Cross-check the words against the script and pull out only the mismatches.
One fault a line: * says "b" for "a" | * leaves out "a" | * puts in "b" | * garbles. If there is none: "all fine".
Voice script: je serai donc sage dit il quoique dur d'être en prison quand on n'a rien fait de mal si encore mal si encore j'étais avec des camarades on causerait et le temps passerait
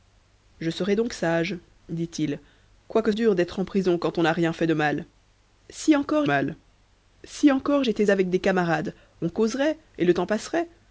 all fine